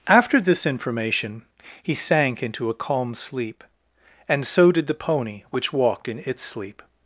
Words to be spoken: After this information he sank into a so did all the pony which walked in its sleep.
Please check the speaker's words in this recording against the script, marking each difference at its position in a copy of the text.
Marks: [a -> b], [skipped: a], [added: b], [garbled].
After this information he sank into a [added: calm sleep and] so did [skipped: all] the pony which walked in its sleep.